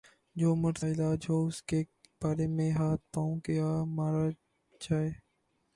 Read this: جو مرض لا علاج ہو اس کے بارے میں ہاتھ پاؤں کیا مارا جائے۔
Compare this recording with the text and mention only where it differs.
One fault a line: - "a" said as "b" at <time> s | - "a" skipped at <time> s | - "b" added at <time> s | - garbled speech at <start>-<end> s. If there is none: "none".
- "لا" skipped at 0.8 s